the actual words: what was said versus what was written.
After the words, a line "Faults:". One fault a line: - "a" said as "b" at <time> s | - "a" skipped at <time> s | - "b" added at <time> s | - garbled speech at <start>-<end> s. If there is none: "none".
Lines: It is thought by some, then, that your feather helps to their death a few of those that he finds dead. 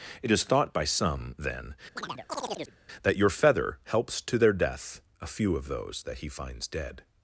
It is thought by some, then, that your feather helps to their death a few of those that he finds dead.
Faults:
none